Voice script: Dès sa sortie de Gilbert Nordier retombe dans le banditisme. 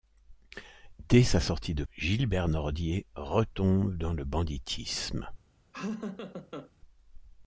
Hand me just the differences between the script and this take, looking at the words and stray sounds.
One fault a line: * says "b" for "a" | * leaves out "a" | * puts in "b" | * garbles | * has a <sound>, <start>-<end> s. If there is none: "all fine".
* has a laugh, 5.7-6.7 s